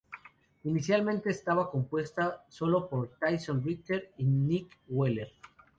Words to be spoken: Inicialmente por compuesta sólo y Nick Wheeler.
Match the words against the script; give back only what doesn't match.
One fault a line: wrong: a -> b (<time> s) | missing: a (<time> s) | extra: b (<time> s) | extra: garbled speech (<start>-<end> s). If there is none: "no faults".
wrong: por -> estaba (1.3 s)
extra: por Tyson Ritter (2.9 s)